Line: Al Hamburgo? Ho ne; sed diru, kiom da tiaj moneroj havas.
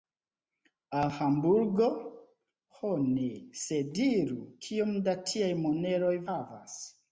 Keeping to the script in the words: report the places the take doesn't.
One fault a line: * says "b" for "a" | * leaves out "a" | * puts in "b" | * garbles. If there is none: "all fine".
all fine